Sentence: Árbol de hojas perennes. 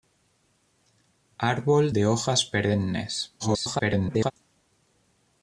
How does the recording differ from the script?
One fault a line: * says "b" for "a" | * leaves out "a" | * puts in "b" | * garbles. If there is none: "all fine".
* garbles